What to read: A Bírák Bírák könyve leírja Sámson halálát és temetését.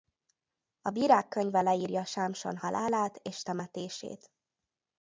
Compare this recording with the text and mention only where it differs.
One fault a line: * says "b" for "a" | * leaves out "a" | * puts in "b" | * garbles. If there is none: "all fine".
* leaves out "Bírák"